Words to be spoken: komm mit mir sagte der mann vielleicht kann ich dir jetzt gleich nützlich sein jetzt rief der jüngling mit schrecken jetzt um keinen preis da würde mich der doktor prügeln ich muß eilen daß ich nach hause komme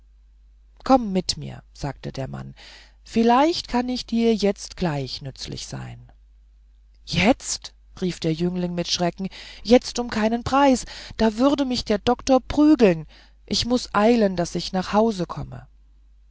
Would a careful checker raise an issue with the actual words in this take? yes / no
no